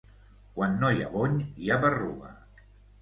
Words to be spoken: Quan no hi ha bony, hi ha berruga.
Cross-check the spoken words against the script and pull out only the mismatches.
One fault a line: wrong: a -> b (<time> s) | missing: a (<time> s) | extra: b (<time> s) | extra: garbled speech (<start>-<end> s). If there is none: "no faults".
no faults